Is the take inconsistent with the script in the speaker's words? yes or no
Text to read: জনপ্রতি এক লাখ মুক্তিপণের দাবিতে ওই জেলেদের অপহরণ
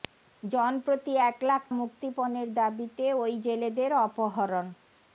no